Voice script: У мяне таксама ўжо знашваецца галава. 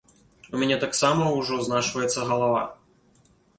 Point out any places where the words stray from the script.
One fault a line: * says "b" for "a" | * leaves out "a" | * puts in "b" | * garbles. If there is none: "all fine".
all fine